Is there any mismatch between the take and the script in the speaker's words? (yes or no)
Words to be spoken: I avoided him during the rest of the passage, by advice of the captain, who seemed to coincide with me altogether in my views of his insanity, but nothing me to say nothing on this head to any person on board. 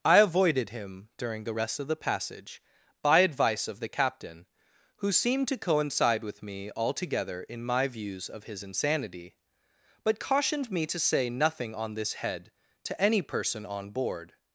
yes